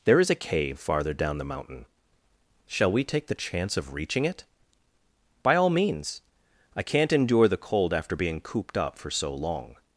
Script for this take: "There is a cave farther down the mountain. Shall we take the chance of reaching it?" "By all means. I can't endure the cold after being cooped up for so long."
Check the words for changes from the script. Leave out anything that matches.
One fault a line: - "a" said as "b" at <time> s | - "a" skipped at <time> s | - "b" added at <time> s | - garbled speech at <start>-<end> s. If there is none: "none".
none